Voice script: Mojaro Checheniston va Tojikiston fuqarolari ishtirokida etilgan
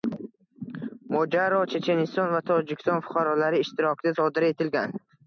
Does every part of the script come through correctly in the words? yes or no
no